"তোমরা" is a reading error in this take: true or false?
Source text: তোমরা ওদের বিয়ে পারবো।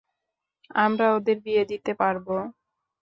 true